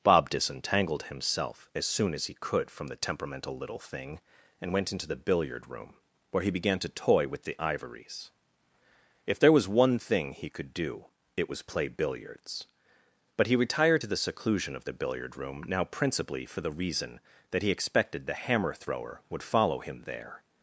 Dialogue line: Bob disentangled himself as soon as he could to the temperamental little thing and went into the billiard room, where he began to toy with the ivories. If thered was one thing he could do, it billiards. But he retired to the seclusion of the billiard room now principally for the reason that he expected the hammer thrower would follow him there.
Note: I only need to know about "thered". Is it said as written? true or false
false